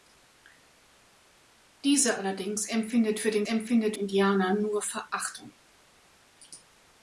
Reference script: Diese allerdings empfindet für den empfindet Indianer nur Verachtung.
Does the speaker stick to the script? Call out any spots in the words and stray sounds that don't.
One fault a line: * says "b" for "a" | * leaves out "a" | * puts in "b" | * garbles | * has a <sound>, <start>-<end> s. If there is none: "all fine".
all fine